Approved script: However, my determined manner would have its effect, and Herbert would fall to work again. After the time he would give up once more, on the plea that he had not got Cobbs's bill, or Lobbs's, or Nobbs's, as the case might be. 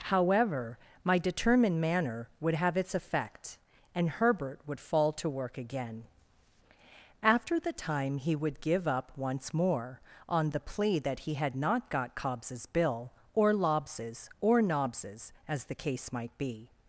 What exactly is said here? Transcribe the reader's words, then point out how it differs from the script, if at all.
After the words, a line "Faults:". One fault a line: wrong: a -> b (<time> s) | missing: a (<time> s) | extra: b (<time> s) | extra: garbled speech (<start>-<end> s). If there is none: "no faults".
However, my determined manner would have its effect, and Herbert would fall to work again. After the time he would give up once more, on the plea that he had not got Cobbs's bill, or Lobbs's, or Nobbs's, as the case might be.
Faults:
no faults